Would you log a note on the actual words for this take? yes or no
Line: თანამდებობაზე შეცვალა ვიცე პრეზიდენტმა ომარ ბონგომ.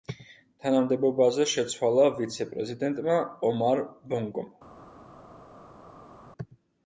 no